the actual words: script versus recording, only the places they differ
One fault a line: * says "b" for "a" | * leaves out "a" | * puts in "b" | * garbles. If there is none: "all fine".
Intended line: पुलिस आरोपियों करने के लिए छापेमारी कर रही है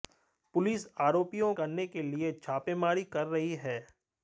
all fine